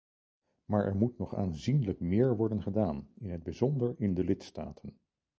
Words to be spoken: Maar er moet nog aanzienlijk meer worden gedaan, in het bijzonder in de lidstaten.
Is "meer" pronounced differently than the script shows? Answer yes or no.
no